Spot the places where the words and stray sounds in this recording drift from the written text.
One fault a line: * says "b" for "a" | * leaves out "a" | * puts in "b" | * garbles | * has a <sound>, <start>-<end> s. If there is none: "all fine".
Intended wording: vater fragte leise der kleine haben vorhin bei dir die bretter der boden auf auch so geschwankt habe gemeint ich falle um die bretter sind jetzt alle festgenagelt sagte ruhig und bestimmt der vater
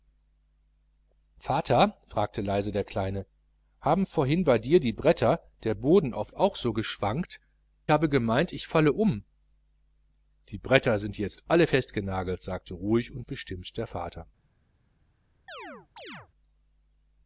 * has a chirp, 15.5-16.3 s